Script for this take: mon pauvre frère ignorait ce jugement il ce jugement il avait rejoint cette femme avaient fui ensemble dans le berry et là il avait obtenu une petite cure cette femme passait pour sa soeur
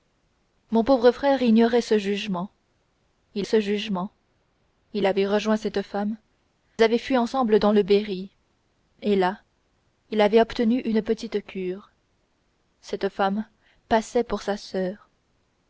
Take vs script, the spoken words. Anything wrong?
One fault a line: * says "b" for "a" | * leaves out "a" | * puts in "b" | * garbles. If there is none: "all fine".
all fine